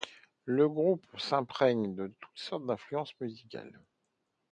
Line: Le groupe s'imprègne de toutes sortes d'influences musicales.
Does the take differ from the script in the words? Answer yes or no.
no